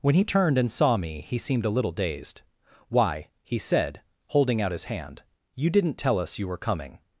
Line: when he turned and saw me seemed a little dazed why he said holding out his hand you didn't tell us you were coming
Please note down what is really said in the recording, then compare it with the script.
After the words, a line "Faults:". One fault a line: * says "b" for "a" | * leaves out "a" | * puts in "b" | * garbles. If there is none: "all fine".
when he turned and saw me he seemed a little dazed why he said holding out his hand you didn't tell us you were coming
Faults:
* puts in "he"